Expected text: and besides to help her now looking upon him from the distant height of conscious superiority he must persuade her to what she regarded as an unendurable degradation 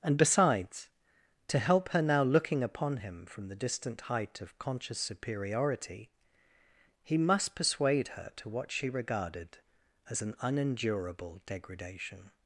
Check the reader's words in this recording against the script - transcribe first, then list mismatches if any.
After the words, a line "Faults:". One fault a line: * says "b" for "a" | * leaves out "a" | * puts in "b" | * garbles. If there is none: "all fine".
and besides to help her now looking upon him from the distant height of conscious superiority he must persuade her to what she regarded as an unendurable degradation
Faults:
all fine